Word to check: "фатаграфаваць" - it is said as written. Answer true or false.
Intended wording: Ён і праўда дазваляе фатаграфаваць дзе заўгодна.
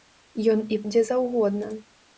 false